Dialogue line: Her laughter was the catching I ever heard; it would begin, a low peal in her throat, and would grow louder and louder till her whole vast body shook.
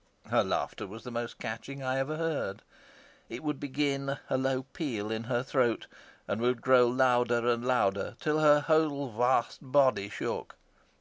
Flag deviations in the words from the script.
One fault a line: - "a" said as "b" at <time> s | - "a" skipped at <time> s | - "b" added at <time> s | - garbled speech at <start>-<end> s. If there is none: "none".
- "most" added at 1.1 s